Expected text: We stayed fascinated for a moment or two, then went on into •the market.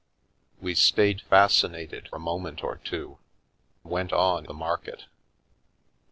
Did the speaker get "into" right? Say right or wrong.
wrong